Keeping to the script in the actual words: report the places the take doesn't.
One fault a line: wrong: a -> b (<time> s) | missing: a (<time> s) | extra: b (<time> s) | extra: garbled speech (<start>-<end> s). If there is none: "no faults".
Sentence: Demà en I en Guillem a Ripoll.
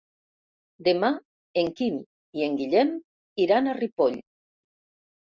extra: Quim (1.8 s)
extra: iran (3.5 s)